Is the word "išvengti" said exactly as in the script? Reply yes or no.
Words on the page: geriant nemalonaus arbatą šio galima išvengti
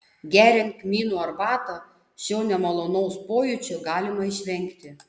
yes